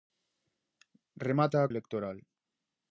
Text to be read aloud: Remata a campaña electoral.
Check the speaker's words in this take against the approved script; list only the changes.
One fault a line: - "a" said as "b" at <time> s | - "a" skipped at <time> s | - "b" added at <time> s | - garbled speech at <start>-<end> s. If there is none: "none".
- "campaña" skipped at 1.7 s